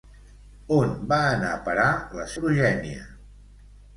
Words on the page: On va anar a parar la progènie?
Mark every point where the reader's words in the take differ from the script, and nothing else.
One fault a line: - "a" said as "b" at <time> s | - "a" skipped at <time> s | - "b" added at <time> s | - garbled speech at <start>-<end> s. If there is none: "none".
none